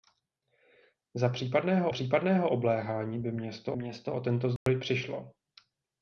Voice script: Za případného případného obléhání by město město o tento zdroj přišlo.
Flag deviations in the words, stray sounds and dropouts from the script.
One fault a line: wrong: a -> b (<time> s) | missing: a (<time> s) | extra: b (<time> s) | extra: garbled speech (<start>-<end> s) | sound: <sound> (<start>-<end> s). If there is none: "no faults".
sound: dropout (4.6-4.7 s)